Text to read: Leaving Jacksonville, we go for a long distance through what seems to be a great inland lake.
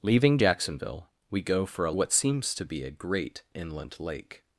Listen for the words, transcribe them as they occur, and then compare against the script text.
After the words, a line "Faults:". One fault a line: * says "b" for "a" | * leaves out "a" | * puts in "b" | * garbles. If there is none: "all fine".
Leaving Jacksonville, we go for a what seems to be a great inland lake.
Faults:
* leaves out "long distance through"